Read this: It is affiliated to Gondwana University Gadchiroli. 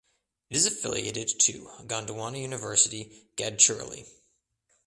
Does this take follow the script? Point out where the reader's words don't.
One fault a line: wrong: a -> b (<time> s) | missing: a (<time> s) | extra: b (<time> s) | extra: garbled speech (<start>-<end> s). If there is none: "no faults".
no faults